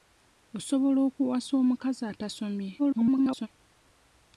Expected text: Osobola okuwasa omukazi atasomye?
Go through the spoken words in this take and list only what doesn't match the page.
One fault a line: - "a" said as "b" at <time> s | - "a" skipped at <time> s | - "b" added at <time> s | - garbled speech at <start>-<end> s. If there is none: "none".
- garbled speech at 2.8-3.5 s